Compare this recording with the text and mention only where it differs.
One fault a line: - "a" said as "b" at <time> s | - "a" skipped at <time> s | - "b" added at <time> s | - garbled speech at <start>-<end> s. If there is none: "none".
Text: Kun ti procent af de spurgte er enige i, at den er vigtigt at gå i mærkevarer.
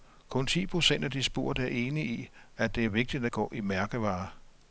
- "den" said as "det" at 2.8 s